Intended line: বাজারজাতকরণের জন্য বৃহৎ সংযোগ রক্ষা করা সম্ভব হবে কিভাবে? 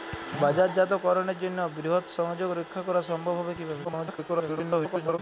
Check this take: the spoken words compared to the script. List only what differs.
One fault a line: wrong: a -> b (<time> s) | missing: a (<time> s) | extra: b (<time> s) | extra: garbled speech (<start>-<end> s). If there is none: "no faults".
extra: garbled speech (3.8-5.2 s)